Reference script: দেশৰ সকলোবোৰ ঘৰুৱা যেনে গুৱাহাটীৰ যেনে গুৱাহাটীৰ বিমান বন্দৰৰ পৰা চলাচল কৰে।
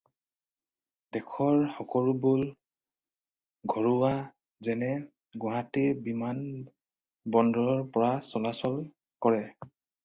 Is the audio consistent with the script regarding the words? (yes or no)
no